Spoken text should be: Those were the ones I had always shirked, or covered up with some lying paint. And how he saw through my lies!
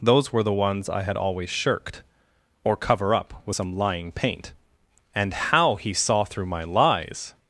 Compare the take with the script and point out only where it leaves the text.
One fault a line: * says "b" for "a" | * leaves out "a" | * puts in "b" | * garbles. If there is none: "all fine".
* says "cover" for "covered"